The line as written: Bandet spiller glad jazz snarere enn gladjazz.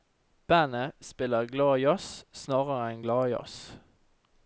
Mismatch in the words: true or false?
false